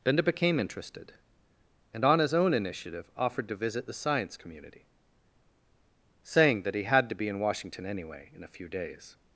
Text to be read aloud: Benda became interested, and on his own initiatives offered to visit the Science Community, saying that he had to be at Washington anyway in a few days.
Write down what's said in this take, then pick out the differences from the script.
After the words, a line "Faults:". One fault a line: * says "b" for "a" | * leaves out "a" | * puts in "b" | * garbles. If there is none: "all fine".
Benda became interested, and on his own initiative offered to visit the Science Community, saying that he had to be in Washington anyway in a few days.
Faults:
* says "initiative" for "initiatives"
* says "in" for "at"